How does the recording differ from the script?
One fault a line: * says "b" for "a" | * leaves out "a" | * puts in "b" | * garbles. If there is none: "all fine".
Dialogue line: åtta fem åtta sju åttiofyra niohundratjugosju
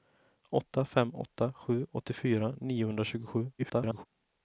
* garbles